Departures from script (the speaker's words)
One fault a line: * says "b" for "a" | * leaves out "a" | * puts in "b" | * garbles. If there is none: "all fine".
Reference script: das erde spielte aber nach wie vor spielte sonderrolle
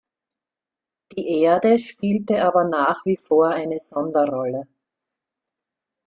* says "die" for "das"
* says "eine" for "spielte"